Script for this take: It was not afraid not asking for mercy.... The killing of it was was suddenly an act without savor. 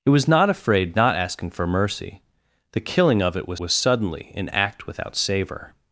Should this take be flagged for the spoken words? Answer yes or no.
no